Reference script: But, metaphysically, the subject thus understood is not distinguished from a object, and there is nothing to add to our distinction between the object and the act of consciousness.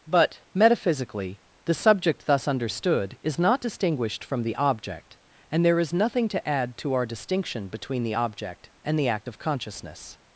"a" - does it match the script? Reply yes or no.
no